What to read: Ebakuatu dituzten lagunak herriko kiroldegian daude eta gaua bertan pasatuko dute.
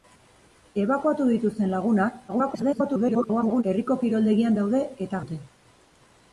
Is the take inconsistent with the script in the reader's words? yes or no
yes